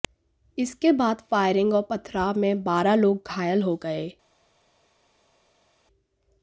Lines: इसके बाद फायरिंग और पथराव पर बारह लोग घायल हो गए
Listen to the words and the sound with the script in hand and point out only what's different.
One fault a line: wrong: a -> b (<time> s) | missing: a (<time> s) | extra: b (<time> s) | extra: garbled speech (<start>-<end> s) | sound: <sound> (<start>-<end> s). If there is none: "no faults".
wrong: पर -> में (2.4 s)